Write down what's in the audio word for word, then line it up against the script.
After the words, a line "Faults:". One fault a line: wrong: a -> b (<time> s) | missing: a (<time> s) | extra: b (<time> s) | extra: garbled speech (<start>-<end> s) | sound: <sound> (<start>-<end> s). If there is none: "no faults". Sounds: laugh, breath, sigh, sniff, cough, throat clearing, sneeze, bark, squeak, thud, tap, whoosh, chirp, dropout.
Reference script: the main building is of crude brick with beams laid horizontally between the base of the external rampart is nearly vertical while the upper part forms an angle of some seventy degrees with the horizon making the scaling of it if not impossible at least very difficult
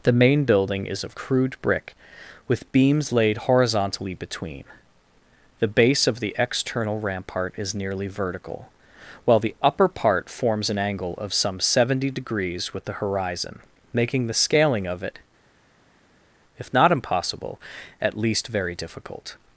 the main building is of crude brick with beams laid horizontally between the base of the external rampart is nearly vertical while the upper part forms an angle of some seventy degrees with the horizon making the scaling of it if not impossible at least very difficult
Faults:
no faults